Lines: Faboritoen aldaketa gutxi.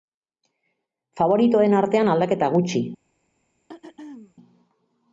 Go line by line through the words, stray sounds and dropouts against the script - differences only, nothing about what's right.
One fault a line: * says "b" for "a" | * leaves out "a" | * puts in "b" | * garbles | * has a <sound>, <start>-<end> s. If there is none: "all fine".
* puts in "artean"
* has a throat clearing, 3.7-4.3 s